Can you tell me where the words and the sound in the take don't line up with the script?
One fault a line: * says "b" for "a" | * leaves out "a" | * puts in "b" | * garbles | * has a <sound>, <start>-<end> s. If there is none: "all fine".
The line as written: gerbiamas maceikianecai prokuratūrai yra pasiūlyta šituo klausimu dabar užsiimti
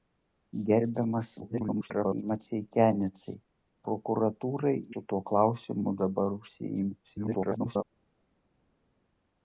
* garbles
* leaves out "yra pasiūlyta"
* garbles